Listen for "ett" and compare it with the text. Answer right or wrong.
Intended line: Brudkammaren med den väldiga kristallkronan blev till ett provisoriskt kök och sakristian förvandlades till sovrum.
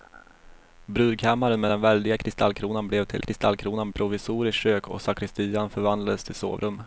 wrong